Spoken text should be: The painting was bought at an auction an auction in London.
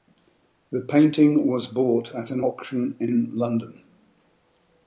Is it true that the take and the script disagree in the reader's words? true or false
true